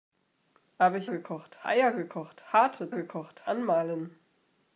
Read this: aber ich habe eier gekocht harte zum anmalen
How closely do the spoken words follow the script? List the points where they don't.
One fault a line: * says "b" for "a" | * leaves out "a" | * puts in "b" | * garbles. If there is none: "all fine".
* says "gekocht" for "habe"
* says "gekocht" for "zum"